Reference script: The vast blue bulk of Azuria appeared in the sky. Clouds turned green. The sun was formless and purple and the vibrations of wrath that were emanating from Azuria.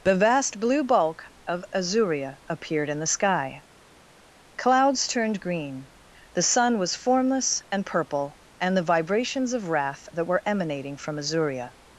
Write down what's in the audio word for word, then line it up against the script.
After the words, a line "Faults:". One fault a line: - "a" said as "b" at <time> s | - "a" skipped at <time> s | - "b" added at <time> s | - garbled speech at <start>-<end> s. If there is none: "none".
The vast blue bulk of Azuria appeared in the sky. Clouds turned green. The sun was formless and purple and the vibrations of wrath that were emanating from Azuria.
Faults:
none